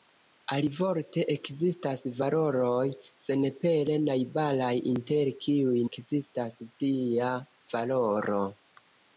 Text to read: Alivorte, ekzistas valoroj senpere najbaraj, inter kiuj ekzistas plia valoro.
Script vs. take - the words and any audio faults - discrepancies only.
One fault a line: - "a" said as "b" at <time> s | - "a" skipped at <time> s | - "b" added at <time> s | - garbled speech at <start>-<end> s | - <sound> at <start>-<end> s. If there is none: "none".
none